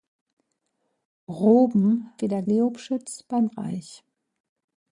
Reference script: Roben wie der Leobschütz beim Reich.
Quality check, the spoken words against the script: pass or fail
pass